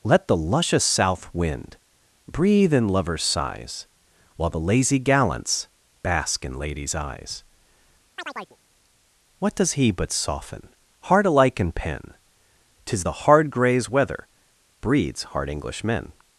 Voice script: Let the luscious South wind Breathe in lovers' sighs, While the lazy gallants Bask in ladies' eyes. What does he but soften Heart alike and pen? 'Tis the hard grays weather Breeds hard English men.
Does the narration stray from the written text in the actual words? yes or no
no